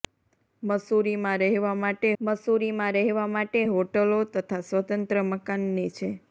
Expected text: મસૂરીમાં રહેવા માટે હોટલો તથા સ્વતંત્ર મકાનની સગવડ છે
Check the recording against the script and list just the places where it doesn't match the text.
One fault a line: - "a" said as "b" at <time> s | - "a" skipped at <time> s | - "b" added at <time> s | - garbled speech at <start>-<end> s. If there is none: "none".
- "મસૂરીમાં રહેવા માટે" added at 2.2 s
- "સગવડ" skipped at 5.9 s